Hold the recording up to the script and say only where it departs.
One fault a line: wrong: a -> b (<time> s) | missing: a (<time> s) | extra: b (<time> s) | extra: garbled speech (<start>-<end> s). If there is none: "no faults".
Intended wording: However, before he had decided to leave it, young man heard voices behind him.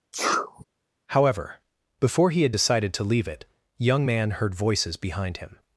no faults